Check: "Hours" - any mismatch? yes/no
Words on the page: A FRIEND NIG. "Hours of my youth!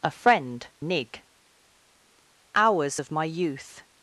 no